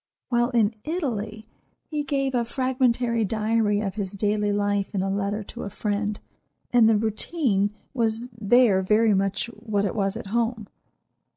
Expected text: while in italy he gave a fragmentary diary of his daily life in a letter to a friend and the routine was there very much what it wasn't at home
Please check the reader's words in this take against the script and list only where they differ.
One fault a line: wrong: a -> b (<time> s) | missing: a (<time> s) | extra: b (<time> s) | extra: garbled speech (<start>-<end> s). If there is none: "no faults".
wrong: wasn't -> was (9.9 s)